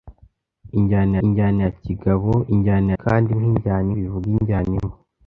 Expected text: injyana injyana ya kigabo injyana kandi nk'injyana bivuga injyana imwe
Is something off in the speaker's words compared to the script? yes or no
no